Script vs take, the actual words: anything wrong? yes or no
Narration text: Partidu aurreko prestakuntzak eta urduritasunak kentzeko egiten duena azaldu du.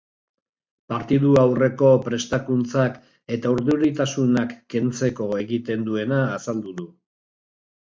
no